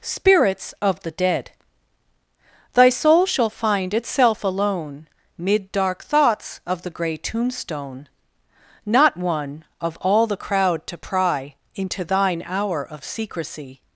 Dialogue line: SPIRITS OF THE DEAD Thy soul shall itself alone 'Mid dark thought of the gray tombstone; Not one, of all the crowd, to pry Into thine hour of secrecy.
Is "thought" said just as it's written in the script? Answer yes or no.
no